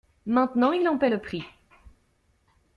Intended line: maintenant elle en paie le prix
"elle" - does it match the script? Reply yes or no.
no